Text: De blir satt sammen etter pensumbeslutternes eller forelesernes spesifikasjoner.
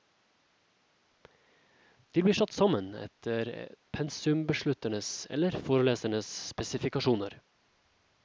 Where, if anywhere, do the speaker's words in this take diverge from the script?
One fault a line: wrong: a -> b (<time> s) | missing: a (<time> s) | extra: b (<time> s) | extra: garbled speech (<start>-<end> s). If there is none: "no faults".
no faults